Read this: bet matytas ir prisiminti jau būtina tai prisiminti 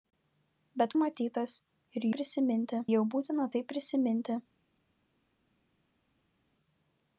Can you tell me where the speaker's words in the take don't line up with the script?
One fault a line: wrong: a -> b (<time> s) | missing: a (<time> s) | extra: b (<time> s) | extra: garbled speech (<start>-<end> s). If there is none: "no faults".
no faults